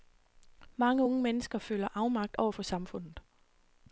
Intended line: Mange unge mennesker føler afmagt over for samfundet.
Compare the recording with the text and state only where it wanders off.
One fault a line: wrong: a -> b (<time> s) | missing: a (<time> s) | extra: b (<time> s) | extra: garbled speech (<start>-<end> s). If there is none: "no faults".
no faults